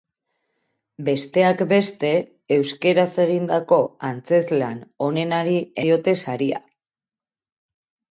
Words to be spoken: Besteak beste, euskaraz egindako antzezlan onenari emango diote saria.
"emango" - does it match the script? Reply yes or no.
no